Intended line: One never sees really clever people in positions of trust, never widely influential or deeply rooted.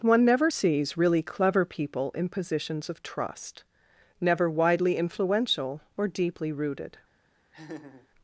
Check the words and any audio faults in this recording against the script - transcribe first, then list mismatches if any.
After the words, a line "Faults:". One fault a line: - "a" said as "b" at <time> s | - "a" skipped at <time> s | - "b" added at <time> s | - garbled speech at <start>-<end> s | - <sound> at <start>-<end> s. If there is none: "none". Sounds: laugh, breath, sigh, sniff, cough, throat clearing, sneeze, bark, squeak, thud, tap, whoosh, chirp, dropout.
One never sees really clever people in positions of trust, never widely influential or deeply rooted.
Faults:
- laugh at 7.5-8.1 s